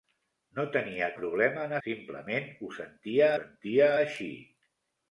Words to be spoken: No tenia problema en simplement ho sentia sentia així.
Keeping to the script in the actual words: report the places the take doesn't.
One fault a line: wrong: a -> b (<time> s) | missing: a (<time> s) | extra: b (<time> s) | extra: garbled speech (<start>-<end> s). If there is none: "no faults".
no faults